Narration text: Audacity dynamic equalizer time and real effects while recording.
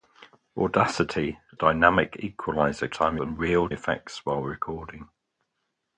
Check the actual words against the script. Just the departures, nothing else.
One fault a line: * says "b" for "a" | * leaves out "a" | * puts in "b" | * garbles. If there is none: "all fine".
all fine